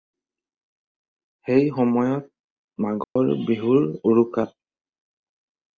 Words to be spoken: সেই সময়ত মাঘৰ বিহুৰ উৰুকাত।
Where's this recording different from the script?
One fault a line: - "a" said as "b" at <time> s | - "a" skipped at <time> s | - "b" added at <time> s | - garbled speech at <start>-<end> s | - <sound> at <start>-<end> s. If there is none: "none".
- dropout at 3.0-3.2 s